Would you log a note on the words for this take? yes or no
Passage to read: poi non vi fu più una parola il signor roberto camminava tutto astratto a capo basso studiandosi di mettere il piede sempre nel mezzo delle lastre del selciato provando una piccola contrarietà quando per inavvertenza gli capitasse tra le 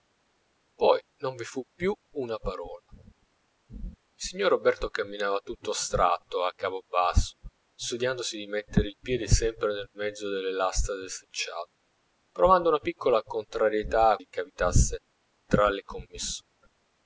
yes